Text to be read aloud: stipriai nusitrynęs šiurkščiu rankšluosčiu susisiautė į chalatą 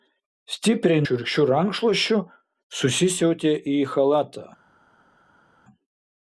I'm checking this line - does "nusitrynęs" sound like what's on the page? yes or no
no